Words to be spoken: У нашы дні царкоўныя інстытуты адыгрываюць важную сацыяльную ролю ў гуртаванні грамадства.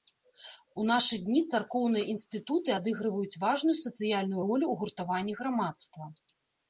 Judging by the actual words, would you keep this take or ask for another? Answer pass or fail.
pass